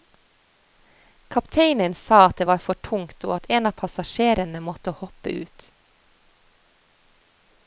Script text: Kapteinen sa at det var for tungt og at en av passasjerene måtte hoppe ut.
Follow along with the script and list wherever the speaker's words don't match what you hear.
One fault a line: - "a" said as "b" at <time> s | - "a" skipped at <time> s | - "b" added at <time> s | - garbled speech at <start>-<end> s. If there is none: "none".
none